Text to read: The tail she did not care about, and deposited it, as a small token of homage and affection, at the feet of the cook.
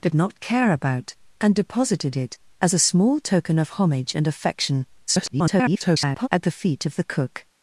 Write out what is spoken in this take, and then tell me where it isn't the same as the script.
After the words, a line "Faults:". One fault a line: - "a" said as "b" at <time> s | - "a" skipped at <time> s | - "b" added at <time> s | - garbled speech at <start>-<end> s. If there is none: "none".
The not care about, and deposited it, as a small token of homage and affection, [garbled] at the feet of the cook.
Faults:
- "tail she did" skipped at 0.1 s
- garbled speech at 5.1-6.3 s